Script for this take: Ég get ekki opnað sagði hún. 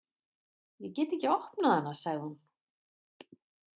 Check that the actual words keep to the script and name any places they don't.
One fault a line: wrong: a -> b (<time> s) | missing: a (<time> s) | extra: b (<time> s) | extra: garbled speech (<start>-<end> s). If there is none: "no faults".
extra: hana (1.8 s)